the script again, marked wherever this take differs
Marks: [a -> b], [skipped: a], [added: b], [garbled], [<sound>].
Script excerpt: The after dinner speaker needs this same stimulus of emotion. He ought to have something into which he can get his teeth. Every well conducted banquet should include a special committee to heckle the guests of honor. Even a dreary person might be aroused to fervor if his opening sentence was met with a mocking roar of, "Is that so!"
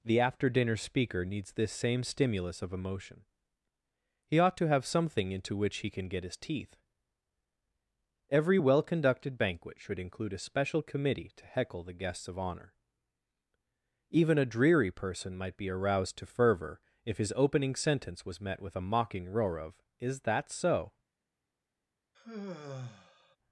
The after dinner speaker needs this same stimulus of emotion. He ought to have something into which he can get his teeth. Every well conducted banquet should include a special committee to heckle the guests of honor. Even a dreary person might be aroused to fervor if his opening sentence was met with a mocking roar of, "Is that so!" [sigh]